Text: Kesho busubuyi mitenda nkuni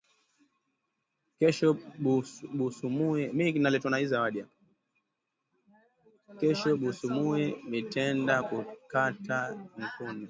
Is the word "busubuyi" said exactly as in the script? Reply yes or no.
yes